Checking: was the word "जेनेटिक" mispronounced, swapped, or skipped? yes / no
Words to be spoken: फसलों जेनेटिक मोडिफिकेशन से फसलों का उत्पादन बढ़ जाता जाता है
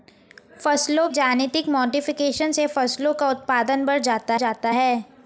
no